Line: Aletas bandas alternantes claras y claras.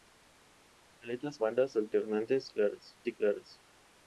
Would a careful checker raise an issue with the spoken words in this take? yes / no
no